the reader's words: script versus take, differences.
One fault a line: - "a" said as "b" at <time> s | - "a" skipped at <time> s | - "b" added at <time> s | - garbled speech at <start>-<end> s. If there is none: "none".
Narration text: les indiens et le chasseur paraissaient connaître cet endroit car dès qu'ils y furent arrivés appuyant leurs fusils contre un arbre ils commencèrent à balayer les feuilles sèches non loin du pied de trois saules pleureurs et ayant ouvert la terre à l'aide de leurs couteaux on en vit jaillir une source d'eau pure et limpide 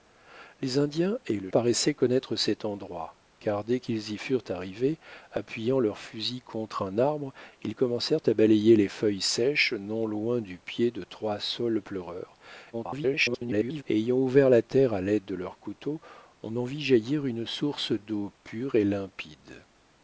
- "chasseur" skipped at 1.5 s
- garbled speech at 12.7-13.8 s